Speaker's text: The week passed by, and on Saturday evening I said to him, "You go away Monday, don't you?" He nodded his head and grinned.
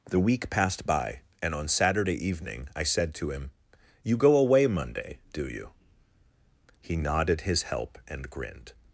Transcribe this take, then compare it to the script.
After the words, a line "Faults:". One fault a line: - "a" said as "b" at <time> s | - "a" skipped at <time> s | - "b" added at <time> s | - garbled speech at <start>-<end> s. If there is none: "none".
The week passed by, and on Saturday evening I said to him, "You go away Monday, do you?" He nodded his help and grinned.
Faults:
- "don't" said as "do" at 5.3 s
- "head" said as "help" at 7.6 s